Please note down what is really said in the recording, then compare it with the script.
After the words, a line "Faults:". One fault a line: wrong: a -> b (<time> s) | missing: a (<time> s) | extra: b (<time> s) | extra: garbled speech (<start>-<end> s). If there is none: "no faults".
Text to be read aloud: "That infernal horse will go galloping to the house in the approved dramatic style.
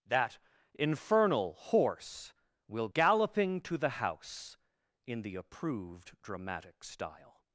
"That infernal horse will galloping to the house in the approved dramatic style.
Faults:
missing: go (2.9 s)